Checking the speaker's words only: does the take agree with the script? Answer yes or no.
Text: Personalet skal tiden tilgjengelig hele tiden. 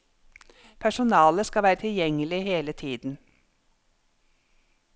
no